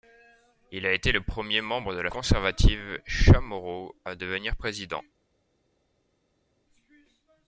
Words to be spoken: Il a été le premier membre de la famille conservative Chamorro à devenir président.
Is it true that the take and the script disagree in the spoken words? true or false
true